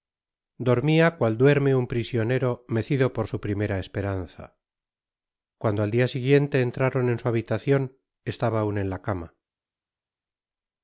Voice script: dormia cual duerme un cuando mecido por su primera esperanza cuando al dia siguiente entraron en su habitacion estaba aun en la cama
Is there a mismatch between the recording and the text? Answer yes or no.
yes